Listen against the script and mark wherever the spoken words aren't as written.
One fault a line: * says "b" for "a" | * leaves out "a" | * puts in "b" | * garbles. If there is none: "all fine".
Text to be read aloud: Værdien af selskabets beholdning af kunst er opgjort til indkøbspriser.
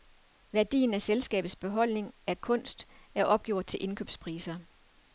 all fine